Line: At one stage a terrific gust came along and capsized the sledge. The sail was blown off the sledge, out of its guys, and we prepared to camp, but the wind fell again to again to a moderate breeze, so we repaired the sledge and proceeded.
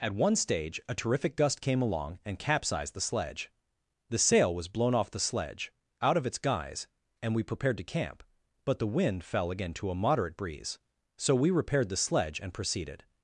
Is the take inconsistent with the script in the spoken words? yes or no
yes